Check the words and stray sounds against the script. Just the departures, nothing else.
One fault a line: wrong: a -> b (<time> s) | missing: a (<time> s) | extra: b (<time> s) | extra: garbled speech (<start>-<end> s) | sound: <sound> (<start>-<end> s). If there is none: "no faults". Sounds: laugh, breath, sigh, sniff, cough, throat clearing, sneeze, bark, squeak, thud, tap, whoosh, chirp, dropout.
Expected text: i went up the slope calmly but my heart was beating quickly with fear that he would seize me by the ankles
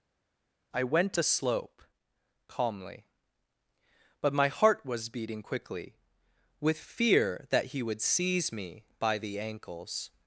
missing: up (1.2 s)